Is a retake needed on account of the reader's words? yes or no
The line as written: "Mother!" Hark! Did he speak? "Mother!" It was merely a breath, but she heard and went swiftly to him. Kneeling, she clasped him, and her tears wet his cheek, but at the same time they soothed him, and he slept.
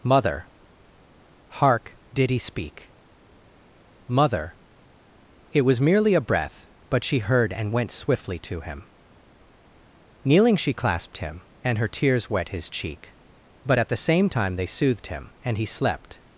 no